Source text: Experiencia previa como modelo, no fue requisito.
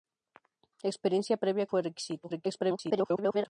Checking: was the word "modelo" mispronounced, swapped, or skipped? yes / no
yes